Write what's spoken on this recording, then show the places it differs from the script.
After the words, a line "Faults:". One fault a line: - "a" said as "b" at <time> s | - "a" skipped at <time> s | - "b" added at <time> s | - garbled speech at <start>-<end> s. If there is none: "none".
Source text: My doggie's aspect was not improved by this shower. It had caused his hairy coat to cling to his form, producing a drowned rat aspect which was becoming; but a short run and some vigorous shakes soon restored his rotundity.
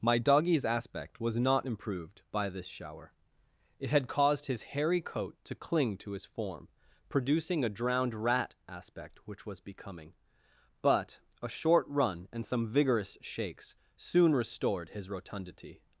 My doggie's aspect was not improved by this shower. It had caused his hairy coat to cling to his form, producing a drowned rat aspect which was becoming; but a short run and some vigorous shakes soon restored his rotundity.
Faults:
none